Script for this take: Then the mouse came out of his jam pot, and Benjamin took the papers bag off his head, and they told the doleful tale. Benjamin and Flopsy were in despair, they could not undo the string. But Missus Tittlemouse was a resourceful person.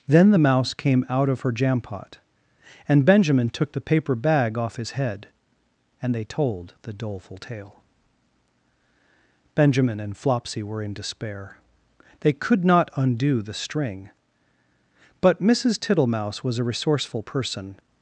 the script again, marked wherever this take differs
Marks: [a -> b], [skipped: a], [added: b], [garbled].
Then the mouse came out of [his -> her] jam pot, and Benjamin took the [papers -> paper] bag off his head, and they told the doleful tale. Benjamin and Flopsy were in despair, they could not undo the string. But Missus Tittlemouse was a resourceful person.